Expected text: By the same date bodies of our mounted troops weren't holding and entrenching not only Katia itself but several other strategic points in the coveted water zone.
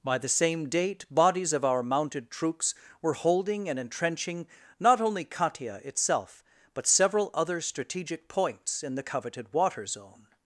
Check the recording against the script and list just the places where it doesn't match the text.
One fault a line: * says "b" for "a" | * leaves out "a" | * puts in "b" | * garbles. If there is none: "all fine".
* says "were" for "weren't"